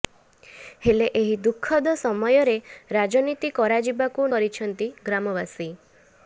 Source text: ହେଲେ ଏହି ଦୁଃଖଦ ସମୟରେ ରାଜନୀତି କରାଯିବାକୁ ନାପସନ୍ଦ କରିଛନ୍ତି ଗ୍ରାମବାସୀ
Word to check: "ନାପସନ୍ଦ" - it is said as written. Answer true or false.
false